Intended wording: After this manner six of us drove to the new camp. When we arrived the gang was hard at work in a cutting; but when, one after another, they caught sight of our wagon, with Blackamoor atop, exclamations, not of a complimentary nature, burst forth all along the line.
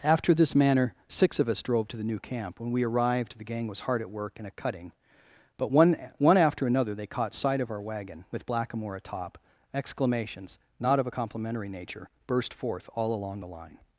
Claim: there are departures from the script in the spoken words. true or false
true